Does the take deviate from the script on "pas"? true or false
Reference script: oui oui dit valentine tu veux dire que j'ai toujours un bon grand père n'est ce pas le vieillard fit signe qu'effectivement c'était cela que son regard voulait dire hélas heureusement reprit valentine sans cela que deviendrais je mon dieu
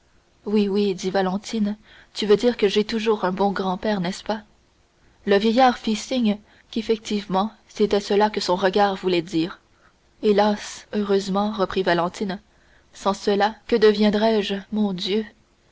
false